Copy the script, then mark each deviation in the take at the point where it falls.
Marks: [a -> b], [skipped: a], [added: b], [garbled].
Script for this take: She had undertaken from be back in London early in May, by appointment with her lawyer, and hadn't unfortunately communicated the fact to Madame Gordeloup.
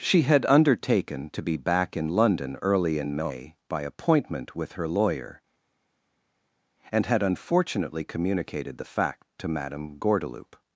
She had undertaken [from -> to] be back in London early in May, by appointment with her lawyer, and [hadn't -> had] unfortunately communicated the fact to Madame Gordeloup.